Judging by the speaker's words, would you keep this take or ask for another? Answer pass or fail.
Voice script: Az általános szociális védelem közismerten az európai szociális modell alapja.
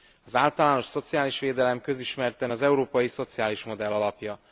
pass